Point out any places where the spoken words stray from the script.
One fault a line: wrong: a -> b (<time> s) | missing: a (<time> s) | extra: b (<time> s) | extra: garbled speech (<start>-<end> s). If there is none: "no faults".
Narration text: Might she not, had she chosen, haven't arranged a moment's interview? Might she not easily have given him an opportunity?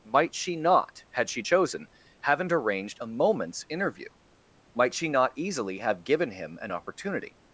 no faults